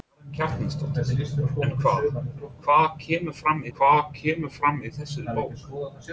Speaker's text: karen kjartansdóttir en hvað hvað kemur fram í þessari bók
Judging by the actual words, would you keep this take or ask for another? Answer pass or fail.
fail